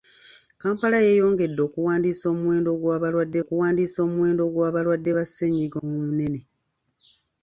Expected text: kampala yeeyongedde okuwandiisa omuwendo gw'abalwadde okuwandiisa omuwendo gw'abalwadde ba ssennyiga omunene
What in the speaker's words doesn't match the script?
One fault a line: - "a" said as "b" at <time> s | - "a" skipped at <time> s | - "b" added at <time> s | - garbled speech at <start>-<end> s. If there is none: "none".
none